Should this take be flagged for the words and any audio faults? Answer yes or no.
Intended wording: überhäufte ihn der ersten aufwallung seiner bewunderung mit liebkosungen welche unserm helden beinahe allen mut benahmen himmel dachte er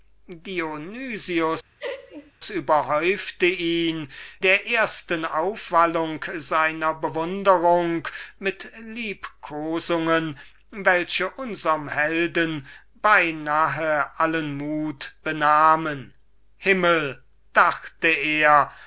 yes